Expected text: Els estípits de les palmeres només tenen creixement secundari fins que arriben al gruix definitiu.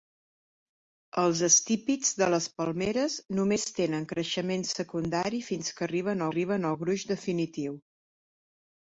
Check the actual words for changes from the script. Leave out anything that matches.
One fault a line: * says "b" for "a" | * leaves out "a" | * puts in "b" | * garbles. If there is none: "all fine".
* puts in "arriben"